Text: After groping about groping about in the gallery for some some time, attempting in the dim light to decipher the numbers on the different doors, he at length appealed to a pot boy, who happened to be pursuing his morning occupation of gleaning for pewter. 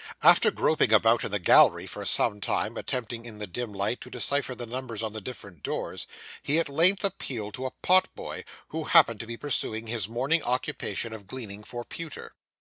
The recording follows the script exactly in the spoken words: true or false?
false